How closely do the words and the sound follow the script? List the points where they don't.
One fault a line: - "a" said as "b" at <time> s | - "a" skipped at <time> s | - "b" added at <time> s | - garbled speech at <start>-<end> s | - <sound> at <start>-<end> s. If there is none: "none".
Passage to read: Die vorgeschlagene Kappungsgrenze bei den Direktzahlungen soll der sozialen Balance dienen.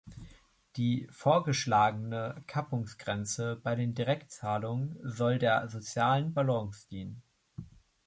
none